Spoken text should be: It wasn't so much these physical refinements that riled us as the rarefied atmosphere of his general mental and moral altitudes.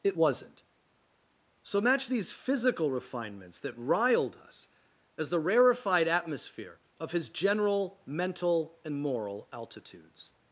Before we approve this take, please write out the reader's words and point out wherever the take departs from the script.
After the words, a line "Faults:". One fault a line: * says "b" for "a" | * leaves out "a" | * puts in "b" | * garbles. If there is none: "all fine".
It wasn't so match these physical refinements that riled us as the rarefied atmosphere of his general mental and moral altitudes.
Faults:
* says "match" for "much"